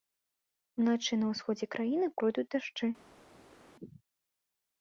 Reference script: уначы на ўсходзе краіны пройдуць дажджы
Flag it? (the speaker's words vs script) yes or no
no